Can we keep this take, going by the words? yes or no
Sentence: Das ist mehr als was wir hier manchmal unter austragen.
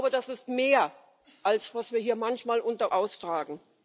yes